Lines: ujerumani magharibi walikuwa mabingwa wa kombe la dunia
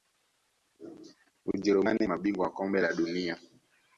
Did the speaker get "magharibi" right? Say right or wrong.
wrong